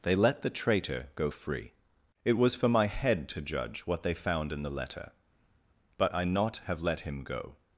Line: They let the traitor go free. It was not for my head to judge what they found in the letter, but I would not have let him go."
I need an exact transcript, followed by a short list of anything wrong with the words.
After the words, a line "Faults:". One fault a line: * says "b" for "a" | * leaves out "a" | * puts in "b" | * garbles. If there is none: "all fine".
They let the traitor go free. It was for my head to judge what they found in the letter, but I not have let him go."
Faults:
* leaves out "not"
* leaves out "would"